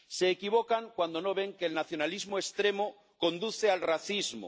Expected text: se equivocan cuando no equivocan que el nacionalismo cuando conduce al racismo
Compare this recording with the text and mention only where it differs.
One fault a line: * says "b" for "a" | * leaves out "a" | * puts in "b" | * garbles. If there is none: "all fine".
* says "ven" for "equivocan"
* says "extremo" for "cuando"